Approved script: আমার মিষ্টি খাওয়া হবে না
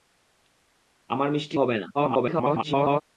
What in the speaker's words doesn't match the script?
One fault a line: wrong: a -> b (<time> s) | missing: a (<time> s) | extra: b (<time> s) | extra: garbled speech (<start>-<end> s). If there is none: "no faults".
missing: খাওয়া (1.6 s)
extra: garbled speech (1.9-3.0 s)